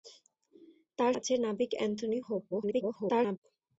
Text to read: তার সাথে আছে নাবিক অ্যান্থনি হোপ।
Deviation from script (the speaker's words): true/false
true